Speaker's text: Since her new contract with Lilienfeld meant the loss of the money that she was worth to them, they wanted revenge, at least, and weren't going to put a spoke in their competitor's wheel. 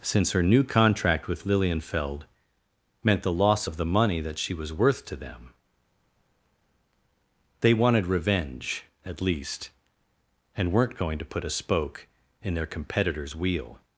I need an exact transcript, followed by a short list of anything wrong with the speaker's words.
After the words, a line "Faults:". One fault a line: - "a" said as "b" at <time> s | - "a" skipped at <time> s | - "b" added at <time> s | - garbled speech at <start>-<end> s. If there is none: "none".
Since her new contract with Lilienfeld meant the loss of the money that she was worth to them, they wanted revenge, at least, and weren't going to put a spoke in their competitor's wheel.
Faults:
none